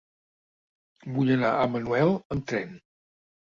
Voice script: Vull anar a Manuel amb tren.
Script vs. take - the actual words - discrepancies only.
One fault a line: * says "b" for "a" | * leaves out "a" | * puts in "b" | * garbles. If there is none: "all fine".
all fine